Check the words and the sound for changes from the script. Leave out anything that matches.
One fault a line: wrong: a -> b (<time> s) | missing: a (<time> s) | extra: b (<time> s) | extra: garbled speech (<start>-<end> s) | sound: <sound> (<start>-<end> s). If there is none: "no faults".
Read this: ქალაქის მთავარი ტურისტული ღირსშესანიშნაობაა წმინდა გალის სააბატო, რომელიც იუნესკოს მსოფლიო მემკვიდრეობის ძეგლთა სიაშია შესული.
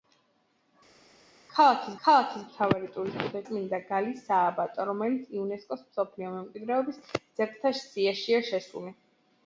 extra: ქალაქის (2.1 s)
missing: ღირსშესანიშნაობაა (3.4 s)